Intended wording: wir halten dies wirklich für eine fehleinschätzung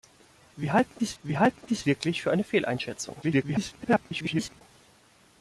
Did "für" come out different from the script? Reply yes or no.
no